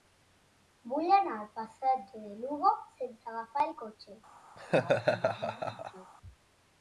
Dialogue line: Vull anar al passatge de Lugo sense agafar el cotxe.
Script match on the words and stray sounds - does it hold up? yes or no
no